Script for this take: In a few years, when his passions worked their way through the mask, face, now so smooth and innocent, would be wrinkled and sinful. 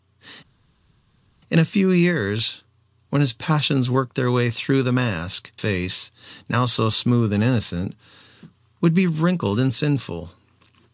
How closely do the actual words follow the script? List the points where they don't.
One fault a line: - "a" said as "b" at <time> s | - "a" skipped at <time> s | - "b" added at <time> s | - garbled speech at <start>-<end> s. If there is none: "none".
none